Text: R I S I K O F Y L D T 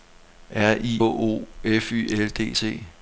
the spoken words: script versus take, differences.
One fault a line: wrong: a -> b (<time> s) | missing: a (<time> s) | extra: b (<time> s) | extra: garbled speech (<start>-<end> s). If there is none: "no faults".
missing: S I K (1.0 s)